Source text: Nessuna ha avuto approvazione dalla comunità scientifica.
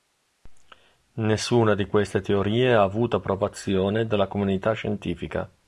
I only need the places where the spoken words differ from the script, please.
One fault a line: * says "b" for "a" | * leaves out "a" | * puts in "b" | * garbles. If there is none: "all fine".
* puts in "di queste teorie"